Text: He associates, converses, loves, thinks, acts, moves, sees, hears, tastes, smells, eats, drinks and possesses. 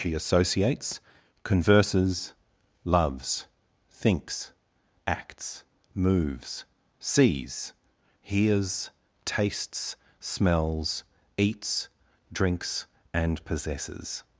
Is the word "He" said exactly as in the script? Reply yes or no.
no